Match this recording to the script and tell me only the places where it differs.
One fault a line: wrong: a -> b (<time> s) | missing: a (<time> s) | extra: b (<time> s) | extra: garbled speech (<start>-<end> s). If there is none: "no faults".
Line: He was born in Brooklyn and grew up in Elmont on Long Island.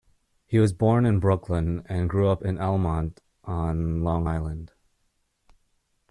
no faults